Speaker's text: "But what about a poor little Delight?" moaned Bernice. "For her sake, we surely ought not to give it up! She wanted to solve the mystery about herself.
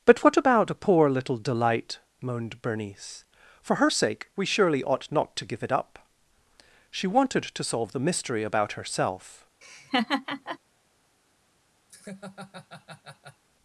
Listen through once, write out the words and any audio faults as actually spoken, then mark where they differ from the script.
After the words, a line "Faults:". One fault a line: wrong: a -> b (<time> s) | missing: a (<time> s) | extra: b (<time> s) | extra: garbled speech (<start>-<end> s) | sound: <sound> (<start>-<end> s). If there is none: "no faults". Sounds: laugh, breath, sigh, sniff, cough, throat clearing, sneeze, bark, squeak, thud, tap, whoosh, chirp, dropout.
"But what about a poor little Delight?" moaned Bernice. "For her sake, we surely ought not to give it up! She wanted to solve the mystery about herself.
Faults:
sound: laugh (9.6-10.6 s)
sound: laugh (11.9-13.4 s)